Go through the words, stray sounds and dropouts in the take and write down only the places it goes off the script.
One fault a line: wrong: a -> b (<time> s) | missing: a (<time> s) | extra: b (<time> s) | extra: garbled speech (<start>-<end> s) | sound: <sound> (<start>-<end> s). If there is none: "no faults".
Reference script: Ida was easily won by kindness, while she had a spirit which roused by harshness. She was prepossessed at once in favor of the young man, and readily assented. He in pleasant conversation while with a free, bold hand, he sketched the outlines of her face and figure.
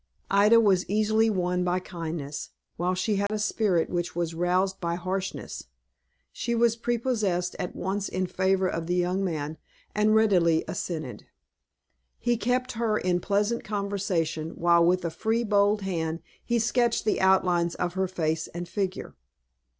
sound: dropout (3.3-3.3 s)
extra: was (4.2 s)
extra: kept her (12.3 s)